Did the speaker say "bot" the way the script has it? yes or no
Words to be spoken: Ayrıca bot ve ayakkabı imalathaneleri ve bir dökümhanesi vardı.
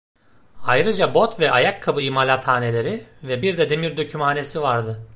yes